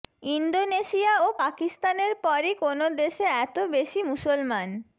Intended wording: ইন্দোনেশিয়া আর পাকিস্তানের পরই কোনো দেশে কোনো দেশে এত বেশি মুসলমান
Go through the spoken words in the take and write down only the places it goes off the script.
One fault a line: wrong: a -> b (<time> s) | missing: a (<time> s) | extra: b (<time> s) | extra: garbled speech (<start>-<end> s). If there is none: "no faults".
wrong: আর -> ও (1.2 s)
missing: কোনো দেশে (3.2 s)